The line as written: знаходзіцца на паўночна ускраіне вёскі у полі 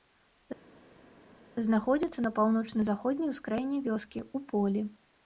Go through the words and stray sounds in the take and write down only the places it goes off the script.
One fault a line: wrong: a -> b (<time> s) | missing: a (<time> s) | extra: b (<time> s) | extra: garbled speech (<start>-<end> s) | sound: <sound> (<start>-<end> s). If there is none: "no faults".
extra: заходняй (2.9 s)